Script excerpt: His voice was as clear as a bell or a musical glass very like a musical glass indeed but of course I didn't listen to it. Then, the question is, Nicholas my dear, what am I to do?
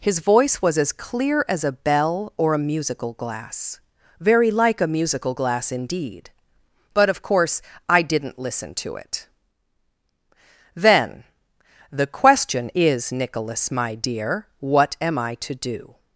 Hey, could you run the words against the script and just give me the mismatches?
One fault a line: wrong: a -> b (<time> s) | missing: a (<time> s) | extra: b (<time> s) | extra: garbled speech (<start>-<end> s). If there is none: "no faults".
no faults